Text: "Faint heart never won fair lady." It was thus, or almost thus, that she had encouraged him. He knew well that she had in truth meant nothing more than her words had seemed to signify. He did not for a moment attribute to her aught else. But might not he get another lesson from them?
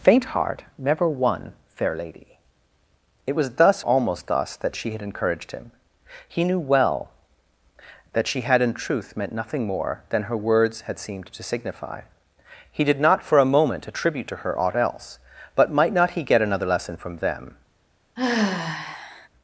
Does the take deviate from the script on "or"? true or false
true